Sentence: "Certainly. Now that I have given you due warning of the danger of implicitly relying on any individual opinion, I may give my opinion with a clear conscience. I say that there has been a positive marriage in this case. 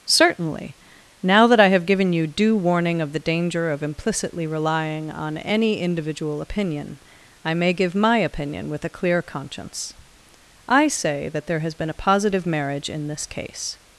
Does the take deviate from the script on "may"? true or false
false